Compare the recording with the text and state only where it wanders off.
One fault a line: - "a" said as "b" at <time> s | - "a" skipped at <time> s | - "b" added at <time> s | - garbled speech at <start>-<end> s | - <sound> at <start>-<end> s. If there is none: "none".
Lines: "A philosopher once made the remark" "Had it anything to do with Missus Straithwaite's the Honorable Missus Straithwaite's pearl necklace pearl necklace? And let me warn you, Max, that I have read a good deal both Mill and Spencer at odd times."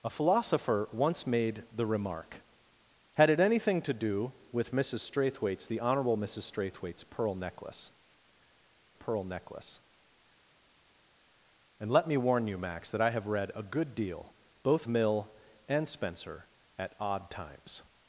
none